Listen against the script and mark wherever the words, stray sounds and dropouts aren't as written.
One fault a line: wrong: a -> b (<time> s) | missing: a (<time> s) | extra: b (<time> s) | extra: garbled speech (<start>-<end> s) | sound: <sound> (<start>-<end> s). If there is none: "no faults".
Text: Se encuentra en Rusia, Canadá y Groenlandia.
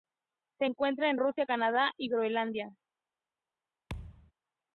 sound: thud (3.9-4.3 s)